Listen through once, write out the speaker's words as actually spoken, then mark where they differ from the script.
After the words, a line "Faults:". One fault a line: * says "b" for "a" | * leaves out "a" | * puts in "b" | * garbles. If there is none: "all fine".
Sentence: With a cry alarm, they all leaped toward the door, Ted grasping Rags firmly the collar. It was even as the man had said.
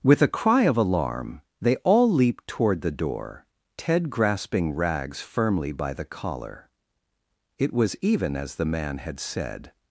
With a cry of alarm, they all leaped toward the door, Ted grasping Rags firmly by the collar. It was even as the man had said.
Faults:
* puts in "of"
* puts in "by"